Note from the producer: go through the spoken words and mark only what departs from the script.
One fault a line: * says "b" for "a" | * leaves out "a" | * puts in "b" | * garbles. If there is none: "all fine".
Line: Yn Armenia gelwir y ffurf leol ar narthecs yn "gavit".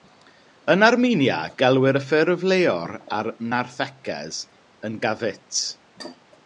all fine